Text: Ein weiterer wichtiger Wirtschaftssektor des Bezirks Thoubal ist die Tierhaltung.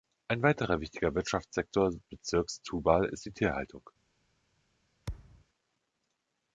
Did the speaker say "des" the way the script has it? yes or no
no